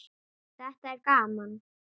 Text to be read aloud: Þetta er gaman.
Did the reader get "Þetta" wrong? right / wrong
right